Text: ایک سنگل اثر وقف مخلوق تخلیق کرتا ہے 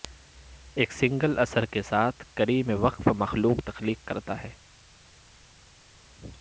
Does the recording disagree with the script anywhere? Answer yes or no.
yes